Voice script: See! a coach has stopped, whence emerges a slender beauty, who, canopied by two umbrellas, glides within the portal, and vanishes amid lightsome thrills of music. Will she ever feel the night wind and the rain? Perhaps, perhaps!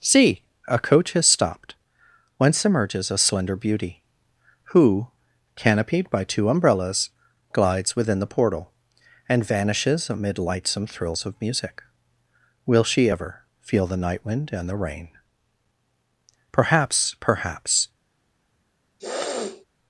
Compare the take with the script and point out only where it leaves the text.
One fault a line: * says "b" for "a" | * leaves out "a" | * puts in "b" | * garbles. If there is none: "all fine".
all fine